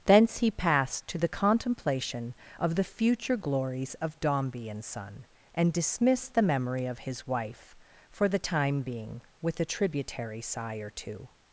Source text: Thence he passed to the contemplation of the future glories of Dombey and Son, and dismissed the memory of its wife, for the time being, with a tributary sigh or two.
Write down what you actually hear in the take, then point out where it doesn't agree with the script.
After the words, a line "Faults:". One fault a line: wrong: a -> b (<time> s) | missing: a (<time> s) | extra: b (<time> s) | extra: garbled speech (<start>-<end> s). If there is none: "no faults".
Thence he passed to the contemplation of the future glories of Dombey and Son, and dismissed the memory of his wife, for the time being, with a tributary sigh or two.
Faults:
wrong: its -> his (7.0 s)